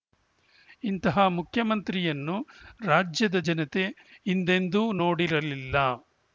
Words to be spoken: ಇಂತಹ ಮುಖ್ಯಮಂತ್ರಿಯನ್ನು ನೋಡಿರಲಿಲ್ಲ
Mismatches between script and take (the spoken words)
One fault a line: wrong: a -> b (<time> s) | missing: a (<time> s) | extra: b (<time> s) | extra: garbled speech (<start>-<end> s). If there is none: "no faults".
extra: ರಾಜ್ಯದ ಜನತೆ ಹಿಂದೆಂದೂ (2.9 s)